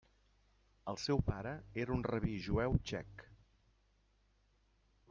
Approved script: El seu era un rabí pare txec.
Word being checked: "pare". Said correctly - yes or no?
no